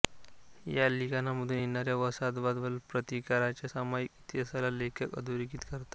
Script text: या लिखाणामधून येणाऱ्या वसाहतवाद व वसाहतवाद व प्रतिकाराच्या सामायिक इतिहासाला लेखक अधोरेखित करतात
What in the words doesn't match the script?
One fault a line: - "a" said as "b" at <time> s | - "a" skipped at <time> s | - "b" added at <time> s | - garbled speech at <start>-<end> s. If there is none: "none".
- "वसाहतवाद व" skipped at 2.8 s